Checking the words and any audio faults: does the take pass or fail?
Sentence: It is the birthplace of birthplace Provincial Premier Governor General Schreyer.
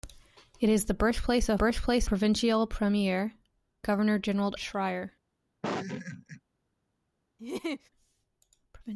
fail